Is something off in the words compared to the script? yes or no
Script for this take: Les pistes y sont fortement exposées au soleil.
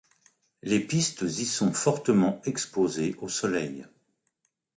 no